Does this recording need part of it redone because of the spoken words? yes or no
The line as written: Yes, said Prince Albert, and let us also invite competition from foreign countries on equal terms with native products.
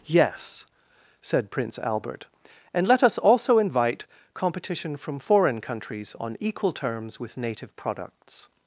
no